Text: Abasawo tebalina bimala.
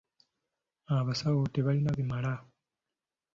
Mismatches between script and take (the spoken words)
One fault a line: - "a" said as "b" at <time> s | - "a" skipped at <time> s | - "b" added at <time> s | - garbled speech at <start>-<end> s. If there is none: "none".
none